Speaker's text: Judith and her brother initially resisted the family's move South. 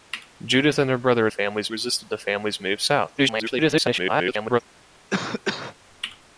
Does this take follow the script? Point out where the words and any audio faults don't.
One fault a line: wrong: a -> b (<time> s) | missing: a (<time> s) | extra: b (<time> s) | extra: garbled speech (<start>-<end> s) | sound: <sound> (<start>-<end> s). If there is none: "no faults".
wrong: initially -> family's (1.3 s)
extra: garbled speech (3.2-4.6 s)
sound: cough (5.1-5.8 s)